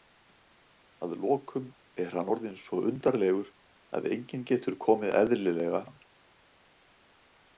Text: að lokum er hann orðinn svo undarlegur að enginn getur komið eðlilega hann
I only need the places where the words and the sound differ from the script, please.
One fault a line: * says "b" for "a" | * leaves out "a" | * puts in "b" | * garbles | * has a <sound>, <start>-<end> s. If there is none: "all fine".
all fine